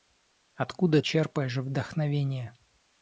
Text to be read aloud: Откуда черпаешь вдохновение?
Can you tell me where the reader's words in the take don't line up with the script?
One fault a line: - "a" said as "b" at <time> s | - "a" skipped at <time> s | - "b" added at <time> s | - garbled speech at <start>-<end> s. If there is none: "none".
none